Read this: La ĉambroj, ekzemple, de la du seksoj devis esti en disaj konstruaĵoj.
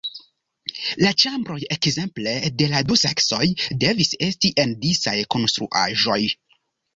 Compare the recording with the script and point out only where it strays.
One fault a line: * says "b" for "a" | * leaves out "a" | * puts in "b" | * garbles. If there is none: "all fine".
all fine